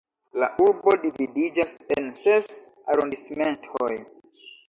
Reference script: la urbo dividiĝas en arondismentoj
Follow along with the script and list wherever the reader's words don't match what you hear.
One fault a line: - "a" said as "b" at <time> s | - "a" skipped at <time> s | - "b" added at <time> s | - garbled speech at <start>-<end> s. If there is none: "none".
- "ses" added at 2.2 s